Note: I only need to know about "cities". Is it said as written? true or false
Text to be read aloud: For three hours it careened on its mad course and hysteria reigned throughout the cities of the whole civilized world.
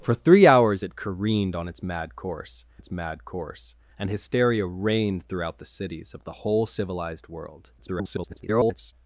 true